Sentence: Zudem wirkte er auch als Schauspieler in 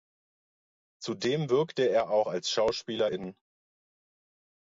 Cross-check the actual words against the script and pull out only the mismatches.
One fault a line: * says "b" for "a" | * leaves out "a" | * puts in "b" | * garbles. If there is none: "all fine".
all fine